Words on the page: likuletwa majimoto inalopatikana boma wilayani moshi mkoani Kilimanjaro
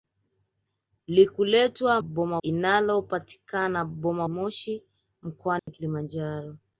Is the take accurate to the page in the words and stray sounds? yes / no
no